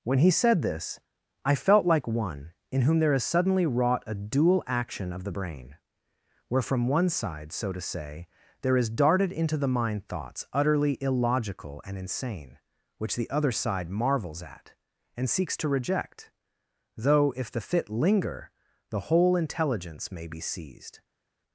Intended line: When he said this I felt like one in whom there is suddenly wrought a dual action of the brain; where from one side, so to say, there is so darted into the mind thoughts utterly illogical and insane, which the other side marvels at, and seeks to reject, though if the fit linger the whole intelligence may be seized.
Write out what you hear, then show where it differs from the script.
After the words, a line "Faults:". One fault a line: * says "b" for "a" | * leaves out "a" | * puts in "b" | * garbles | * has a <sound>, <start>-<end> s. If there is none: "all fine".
When he said this I felt like one in whom there is suddenly wrought a dual action of the brain; where from one side, so to say, there is darted into the mind thoughts utterly illogical and insane, which the other side marvels at, and seeks to reject, though if the fit linger the whole intelligence may be seized.
Faults:
* leaves out "so"